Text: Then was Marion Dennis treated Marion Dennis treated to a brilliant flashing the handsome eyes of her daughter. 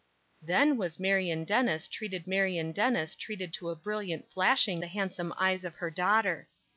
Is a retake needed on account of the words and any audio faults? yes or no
no